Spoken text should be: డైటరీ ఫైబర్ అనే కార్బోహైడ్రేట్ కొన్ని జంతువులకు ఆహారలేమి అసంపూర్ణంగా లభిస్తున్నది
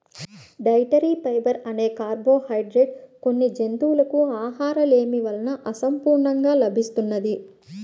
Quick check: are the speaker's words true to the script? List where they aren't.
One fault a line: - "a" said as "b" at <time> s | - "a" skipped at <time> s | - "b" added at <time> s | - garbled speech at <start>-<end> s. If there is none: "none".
- "వలన" added at 5.3 s